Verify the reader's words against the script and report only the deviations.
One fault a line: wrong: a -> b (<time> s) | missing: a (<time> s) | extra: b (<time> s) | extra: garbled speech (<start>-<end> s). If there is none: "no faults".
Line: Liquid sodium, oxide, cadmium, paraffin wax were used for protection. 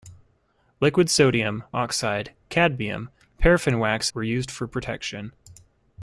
no faults